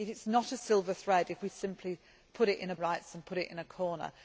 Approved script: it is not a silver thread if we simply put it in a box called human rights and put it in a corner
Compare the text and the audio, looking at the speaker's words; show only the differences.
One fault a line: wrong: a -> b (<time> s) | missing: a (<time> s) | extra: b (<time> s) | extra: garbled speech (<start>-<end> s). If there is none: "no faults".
missing: box called human (2.8 s)